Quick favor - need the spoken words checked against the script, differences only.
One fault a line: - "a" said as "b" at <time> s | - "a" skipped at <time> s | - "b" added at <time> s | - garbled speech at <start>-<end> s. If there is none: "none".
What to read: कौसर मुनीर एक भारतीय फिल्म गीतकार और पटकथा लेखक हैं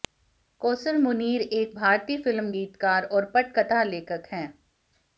none